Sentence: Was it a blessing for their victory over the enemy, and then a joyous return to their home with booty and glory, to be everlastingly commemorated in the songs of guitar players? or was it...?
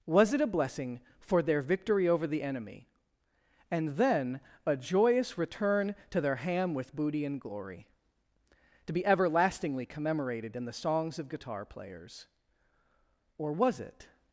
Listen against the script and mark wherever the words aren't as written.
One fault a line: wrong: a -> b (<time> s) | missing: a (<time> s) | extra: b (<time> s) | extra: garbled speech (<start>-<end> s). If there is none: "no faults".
wrong: home -> ham (6.4 s)